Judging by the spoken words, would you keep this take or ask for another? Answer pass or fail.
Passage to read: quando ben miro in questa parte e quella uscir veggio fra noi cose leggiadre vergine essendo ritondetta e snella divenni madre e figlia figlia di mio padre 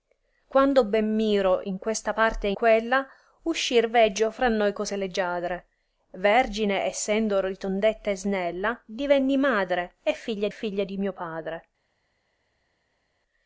pass